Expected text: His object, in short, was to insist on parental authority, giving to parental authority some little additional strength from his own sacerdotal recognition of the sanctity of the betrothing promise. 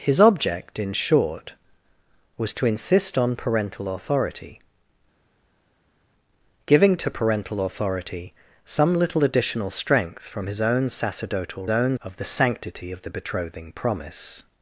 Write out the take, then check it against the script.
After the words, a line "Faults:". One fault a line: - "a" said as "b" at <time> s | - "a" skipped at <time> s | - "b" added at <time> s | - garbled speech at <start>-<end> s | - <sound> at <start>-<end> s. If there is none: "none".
His object, in short, was to insist on parental authority, giving to parental authority some little additional strength from his own sacerdotal own of the sanctity of the betrothing promise.
Faults:
- "recognition" said as "own" at 11.7 s